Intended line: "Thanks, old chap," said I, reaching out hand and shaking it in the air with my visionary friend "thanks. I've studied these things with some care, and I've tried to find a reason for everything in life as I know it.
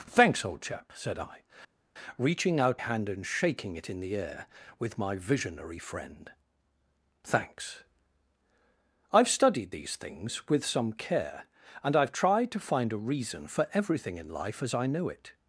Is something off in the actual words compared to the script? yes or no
no